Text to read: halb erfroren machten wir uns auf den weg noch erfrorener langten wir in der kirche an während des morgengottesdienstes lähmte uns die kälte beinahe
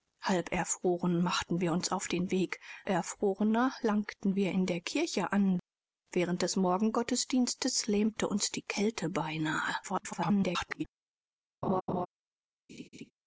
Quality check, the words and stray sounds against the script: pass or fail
fail